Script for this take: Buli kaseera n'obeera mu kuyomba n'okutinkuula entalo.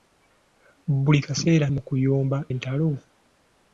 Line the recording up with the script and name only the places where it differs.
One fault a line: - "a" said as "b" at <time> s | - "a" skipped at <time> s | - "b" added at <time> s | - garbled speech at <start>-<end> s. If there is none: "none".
- "n'obeera" skipped at 1.7 s
- "n'okutinkuula" skipped at 2.4 s